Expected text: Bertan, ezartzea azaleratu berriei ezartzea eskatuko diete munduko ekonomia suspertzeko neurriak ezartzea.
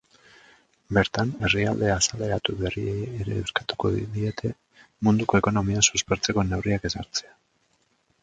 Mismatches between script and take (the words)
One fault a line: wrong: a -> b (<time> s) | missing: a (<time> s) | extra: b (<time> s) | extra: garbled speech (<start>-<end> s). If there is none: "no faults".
wrong: ezartzea -> herrialde (1.5 s)
wrong: ezartzea -> ere (3.2 s)